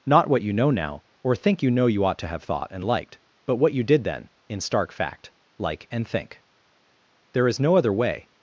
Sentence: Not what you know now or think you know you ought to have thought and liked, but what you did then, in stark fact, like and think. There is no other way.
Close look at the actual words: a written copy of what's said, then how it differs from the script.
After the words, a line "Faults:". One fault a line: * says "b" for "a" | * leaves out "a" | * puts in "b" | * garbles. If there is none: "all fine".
Not what you know now or think you know you ought to have thought and liked, but what you did then, in stark fact, like and think. There is no other way.
Faults:
all fine